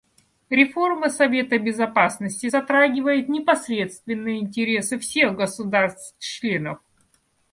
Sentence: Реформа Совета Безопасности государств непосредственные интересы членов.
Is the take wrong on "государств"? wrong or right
wrong